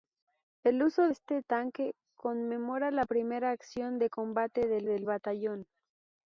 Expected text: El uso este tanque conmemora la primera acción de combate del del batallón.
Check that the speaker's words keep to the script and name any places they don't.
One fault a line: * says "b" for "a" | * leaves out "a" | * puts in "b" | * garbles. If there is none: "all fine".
all fine